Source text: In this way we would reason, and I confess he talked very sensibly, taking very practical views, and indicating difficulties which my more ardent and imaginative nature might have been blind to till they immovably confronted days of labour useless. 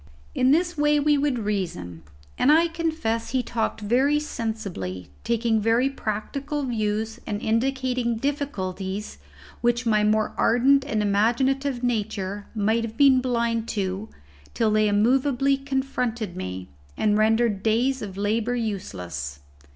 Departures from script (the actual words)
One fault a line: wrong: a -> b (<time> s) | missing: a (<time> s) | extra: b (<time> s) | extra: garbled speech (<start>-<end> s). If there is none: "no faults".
extra: me and rendered (16.4 s)